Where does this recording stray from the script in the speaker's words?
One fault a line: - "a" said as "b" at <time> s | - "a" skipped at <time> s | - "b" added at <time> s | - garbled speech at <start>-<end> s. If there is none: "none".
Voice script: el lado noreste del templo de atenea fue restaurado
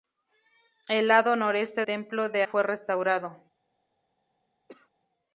- "del" skipped at 1.8 s
- "atenea" skipped at 2.4 s